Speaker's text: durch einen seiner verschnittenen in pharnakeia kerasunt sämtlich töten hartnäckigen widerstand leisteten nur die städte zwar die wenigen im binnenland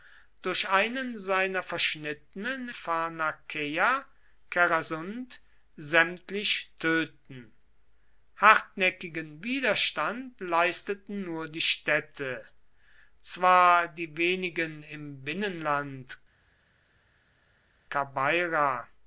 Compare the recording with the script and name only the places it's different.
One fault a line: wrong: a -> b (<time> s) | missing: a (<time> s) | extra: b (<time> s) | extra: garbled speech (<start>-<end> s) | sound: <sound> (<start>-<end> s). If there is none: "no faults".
missing: in (2.7 s)